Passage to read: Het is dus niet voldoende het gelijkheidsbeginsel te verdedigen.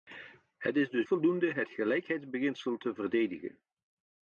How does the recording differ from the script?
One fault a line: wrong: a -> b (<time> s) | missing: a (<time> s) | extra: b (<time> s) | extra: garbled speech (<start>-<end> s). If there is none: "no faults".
missing: niet (1.1 s)